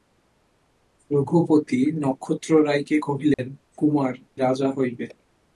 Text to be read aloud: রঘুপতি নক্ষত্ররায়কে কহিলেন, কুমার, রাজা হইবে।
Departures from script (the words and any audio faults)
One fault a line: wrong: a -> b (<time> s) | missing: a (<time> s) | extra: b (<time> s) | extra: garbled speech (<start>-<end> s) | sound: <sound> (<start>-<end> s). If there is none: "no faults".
sound: dropout (3.3-3.4 s)